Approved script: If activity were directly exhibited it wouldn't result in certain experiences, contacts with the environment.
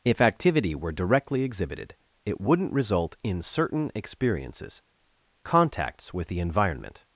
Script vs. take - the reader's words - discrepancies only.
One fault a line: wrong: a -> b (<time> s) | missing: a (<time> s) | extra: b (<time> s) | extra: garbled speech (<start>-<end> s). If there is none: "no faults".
no faults